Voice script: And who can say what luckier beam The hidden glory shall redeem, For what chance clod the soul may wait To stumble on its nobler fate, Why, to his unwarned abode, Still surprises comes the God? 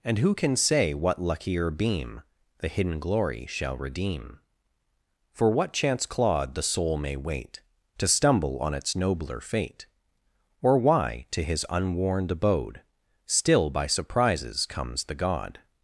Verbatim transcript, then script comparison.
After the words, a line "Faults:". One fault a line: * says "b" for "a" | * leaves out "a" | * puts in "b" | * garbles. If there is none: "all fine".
And who can say what luckier beam The hidden glory shall redeem, For what chance clod the soul may wait To stumble on its nobler fate, Or why, to his unwarned abode, Still by surprises comes the God?
Faults:
* puts in "Or"
* puts in "by"